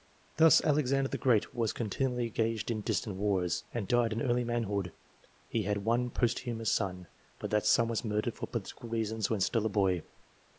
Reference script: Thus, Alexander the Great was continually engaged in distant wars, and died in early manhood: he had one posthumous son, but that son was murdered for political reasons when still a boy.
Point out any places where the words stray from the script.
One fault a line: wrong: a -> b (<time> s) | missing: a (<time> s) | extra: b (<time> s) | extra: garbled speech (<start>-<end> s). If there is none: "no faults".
no faults